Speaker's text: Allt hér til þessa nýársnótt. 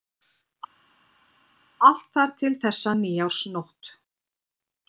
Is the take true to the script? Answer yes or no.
no